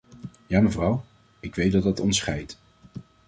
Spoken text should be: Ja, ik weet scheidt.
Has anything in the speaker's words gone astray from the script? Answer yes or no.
yes